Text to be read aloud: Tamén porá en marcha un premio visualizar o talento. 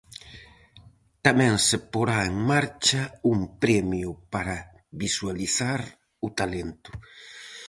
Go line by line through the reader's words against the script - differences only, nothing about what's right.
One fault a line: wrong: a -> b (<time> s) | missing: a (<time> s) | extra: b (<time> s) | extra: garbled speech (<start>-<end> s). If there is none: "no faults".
extra: se (1.7 s)
extra: para (4.3 s)